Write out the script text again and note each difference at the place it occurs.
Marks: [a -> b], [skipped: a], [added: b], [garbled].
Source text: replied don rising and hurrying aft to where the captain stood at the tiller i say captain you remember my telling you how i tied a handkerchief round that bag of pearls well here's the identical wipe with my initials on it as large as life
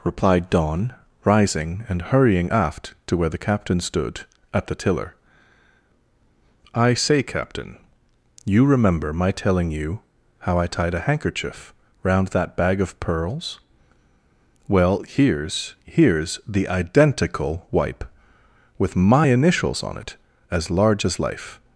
replied don rising and hurrying aft to where the captain stood at the tiller i say captain you remember my telling you how i tied a handkerchief round that bag of pearls well here's [added: here's] the identical wipe with my initials on it as large as life